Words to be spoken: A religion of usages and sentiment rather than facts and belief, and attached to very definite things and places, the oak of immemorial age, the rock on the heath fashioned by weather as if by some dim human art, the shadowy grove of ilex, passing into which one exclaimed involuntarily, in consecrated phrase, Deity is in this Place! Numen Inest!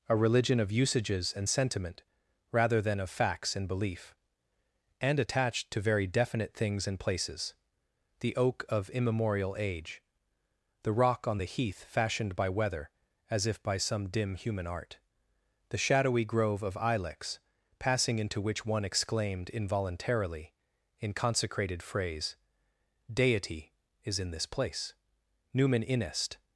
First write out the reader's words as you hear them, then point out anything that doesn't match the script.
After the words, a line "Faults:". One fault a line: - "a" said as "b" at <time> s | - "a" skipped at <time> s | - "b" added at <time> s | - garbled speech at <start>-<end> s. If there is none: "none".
A religion of usages and sentiment rather than of facts and belief, and attached to very definite things and places, the oak of immemorial age, the rock on the heath fashioned by weather as if by some dim human art, the shadowy grove of ilex, passing into which one exclaimed involuntarily, in consecrated phrase, Deity is in this Place! Numen Inest!
Faults:
- "of" added at 3.0 s